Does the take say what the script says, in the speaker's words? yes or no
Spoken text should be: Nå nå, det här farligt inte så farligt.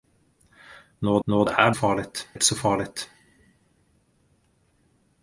yes